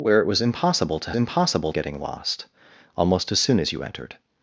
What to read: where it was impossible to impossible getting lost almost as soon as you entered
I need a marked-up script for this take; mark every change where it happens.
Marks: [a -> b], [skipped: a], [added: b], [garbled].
where it was impossible to impossible getting lost almost as soon as you entered